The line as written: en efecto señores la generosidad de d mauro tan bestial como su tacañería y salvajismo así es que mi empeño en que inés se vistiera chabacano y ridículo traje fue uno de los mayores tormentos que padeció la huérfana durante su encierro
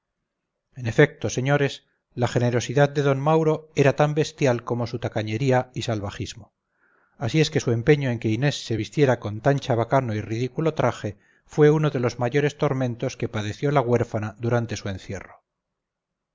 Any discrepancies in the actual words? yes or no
yes